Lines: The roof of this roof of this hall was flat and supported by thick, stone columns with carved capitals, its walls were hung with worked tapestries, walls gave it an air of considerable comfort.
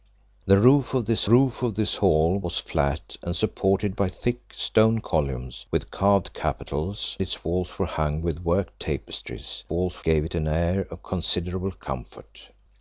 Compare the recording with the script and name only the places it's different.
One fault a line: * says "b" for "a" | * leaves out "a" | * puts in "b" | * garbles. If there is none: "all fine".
all fine